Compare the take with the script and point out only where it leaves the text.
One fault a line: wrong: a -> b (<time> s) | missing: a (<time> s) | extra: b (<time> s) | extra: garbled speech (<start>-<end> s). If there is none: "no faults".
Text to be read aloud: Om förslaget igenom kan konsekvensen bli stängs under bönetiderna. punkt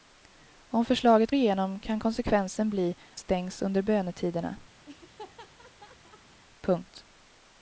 no faults